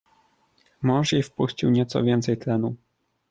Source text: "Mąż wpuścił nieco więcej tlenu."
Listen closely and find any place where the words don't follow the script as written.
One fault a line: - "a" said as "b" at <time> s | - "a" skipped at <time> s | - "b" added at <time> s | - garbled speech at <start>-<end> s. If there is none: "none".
- "jej" added at 1.1 s